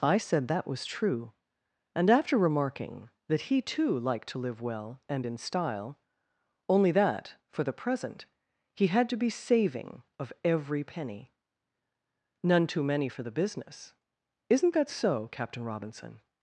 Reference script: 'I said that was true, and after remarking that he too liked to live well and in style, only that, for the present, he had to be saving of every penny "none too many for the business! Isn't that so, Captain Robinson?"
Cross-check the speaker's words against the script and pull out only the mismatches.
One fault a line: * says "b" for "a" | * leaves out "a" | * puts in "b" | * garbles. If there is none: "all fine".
all fine